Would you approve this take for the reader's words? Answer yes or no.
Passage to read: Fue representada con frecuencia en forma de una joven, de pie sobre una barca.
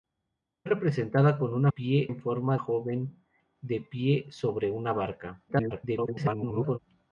no